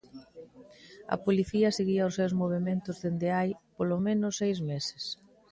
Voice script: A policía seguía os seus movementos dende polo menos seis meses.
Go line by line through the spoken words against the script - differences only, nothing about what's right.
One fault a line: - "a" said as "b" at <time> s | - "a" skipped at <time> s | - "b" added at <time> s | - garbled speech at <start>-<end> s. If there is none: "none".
- "hai" added at 3.4 s